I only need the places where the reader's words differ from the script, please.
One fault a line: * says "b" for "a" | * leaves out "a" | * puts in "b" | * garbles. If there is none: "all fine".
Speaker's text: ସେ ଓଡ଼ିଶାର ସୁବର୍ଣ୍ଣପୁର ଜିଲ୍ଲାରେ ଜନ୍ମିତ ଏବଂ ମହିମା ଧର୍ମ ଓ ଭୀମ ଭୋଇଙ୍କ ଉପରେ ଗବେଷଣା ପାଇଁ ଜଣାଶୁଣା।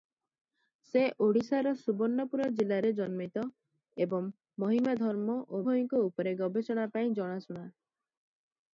* leaves out "ଭୀମ"